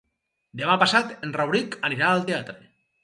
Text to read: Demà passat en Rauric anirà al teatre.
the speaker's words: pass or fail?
pass